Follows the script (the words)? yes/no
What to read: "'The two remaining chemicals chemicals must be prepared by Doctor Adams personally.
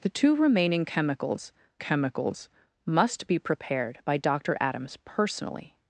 yes